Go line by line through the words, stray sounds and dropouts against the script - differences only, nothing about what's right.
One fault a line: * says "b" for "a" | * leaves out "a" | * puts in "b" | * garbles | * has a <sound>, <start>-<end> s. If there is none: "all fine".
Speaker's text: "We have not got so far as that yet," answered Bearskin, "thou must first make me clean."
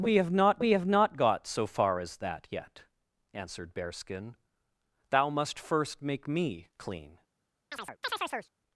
* puts in "we have not"
* has a chirp, 7.7-8.5 s